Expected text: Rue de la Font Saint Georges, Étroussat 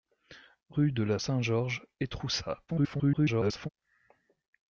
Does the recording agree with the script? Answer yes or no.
no